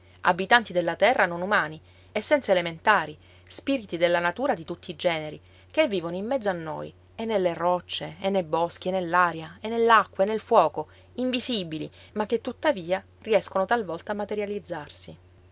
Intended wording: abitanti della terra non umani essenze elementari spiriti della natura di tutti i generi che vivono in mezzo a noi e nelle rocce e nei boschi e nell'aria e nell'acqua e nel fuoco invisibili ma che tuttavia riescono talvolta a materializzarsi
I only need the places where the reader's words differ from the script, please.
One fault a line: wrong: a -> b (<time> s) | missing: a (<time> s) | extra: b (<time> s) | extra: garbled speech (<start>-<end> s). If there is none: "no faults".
no faults